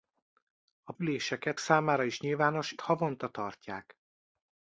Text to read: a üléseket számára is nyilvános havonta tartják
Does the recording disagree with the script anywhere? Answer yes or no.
no